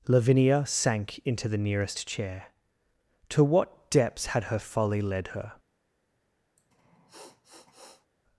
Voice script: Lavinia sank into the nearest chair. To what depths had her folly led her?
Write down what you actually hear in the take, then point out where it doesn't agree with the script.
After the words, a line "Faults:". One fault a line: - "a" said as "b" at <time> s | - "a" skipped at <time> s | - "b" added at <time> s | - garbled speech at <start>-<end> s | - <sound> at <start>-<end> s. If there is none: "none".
Lavinia sank into the nearest chair. To what depths had her folly led her?
Faults:
- sniff at 6.6-8.1 s